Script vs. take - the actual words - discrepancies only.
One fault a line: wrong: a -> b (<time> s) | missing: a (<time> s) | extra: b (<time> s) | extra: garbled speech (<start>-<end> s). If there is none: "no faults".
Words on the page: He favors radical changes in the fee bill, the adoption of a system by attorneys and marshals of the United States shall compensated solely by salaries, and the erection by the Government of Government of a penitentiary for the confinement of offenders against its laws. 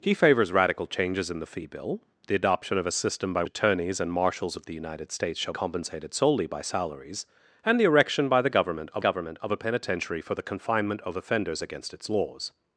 no faults